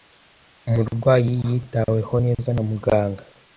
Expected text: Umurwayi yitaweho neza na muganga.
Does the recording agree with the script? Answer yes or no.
yes